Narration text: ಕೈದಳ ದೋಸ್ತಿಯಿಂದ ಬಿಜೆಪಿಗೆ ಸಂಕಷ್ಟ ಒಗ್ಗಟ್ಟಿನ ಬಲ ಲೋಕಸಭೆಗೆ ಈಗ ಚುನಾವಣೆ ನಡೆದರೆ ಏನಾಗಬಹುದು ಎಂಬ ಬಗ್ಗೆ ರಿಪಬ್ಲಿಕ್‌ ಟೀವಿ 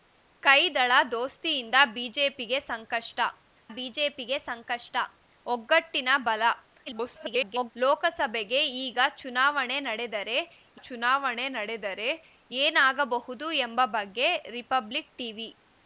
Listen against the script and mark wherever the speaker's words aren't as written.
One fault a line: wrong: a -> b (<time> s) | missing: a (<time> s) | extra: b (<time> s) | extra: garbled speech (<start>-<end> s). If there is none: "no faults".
extra: ಬಿಜೆಪಿಗೆ ಸಂಕಷ್ಟ (3.7 s)
extra: garbled speech (6.9-7.7 s)
extra: ಚುನಾವಣೆ ನಡೆದರೆ (10.8 s)